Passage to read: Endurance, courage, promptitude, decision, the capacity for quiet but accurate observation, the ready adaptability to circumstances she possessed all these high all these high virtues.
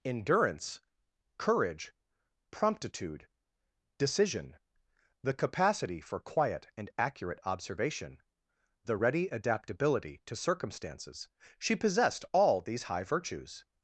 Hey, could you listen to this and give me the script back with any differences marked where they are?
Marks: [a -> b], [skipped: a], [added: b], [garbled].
Endurance, courage, promptitude, decision, the capacity for quiet [but -> and] accurate observation, the ready adaptability to circumstances she possessed all these high [skipped: all these high] virtues.